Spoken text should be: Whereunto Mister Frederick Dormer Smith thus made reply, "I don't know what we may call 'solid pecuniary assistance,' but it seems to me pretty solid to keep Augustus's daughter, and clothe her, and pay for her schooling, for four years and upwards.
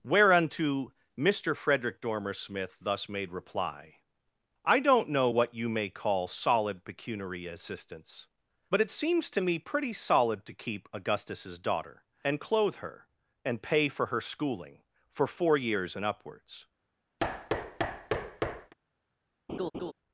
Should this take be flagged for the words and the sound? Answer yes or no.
yes